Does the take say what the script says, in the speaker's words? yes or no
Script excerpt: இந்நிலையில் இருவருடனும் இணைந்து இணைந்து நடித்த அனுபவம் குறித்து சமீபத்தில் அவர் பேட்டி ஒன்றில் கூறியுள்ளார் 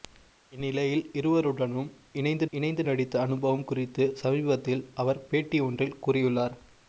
yes